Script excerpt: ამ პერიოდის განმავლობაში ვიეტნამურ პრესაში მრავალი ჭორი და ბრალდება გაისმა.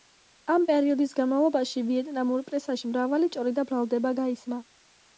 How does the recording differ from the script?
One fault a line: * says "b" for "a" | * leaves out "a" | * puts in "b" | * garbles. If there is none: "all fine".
all fine